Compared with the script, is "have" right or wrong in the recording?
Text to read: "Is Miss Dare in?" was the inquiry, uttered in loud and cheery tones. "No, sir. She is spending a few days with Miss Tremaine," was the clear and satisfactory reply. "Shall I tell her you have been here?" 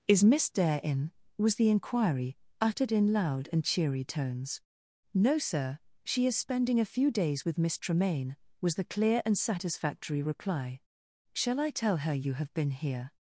right